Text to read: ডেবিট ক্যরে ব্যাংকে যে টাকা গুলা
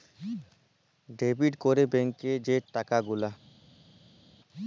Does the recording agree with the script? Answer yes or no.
yes